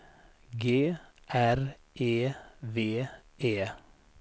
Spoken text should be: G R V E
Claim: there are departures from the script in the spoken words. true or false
true